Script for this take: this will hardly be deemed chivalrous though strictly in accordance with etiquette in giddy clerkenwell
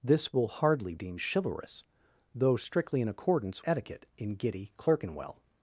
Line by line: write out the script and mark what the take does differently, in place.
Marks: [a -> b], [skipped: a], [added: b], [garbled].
this will hardly [skipped: be] deemed chivalrous though strictly in accordance [skipped: with] etiquette in giddy clerkenwell